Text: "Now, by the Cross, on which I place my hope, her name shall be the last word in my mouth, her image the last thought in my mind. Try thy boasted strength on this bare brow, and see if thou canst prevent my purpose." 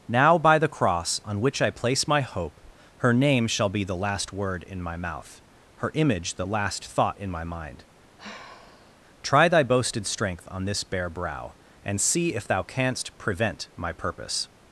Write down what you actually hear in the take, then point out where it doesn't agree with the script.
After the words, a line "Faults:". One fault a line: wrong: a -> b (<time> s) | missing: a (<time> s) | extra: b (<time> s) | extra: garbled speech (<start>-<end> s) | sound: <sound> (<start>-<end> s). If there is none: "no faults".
"Now, by the Cross, on which I place my hope, her name shall be the last word in my mouth, her image the last thought in my mind. Try thy boasted strength on this bare brow, and see if thou canst prevent my purpose."
Faults:
sound: sigh (8.2-9.0 s)